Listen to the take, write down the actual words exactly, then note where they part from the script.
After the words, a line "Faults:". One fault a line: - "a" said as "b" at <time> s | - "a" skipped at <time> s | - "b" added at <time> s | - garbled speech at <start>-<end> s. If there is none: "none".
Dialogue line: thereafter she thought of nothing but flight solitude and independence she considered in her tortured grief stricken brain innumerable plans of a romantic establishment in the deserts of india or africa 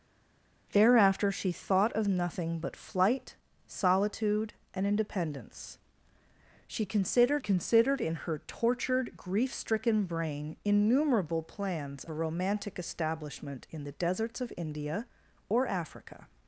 thereafter she thought of nothing but flight solitude and independence she considered considered in her tortured grief stricken brain innumerable plans a romantic establishment in the deserts of india or africa
Faults:
- "considered" added at 7.4 s
- "of" skipped at 12.0 s